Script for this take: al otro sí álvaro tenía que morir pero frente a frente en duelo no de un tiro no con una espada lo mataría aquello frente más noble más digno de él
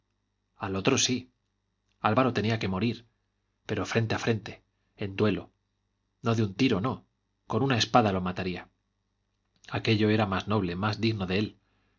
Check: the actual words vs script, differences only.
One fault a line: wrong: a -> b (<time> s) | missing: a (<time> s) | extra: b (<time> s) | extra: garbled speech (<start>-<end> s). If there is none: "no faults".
wrong: frente -> era (10.1 s)